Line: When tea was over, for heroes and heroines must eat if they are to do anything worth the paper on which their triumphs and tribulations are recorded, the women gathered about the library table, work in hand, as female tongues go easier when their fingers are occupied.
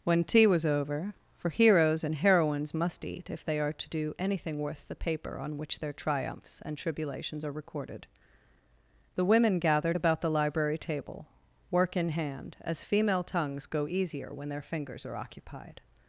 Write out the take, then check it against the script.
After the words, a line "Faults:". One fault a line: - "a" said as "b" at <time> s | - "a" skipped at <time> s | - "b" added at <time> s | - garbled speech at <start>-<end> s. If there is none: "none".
When tea was over, for heroes and heroines must eat if they are to do anything worth the paper on which their triumphs and tribulations are recorded, the women gathered about the library table, work in hand, as female tongues go easier when their fingers are occupied.
Faults:
none